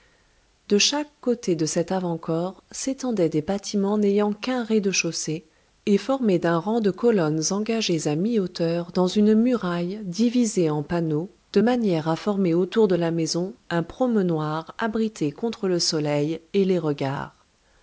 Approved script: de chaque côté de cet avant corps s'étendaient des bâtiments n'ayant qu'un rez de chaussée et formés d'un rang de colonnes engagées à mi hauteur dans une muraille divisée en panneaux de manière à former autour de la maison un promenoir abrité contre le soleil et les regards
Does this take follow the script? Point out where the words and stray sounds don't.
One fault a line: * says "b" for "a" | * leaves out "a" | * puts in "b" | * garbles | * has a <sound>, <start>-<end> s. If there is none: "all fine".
all fine